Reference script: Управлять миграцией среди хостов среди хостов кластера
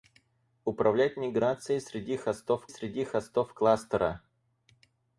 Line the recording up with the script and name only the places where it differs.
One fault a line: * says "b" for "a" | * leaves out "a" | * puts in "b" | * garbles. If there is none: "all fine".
all fine